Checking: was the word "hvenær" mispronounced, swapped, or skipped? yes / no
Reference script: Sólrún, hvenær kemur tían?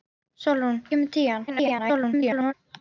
yes